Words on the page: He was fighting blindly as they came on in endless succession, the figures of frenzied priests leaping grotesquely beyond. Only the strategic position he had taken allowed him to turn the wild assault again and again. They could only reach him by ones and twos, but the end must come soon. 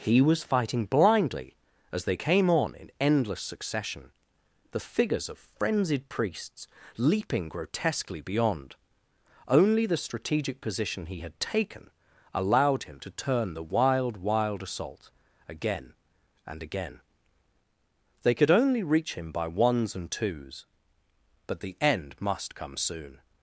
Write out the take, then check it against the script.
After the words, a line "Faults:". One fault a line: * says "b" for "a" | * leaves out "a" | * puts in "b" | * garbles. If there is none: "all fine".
He was fighting blindly as they came on in endless succession, the figures of frenzied priests leaping grotesquely beyond. Only the strategic position he had taken allowed him to turn the wild wild assault again and again. They could only reach him by ones and twos, but the end must come soon.
Faults:
* puts in "wild"